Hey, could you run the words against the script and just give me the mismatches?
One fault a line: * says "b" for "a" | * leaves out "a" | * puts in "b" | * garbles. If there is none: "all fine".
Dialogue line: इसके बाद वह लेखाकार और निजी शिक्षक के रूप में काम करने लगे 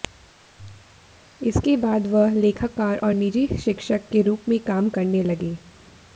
all fine